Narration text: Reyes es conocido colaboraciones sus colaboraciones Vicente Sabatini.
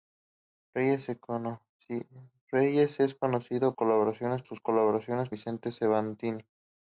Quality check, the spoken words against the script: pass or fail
pass